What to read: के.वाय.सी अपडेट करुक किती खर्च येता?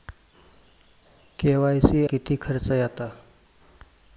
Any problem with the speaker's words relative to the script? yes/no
yes